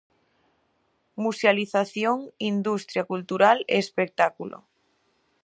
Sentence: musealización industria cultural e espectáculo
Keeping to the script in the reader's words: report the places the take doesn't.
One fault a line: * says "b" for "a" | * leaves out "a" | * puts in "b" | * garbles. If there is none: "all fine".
all fine